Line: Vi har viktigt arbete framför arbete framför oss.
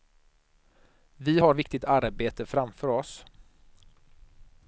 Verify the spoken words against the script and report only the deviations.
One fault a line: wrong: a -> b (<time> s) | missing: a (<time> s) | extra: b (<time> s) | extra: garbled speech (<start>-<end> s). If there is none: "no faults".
missing: arbete framför (2.9 s)